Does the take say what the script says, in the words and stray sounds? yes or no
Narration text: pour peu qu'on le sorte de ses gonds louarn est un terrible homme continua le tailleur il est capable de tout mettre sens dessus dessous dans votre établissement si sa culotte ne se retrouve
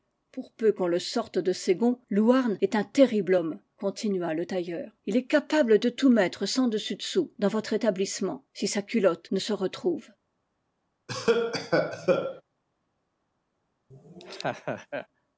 no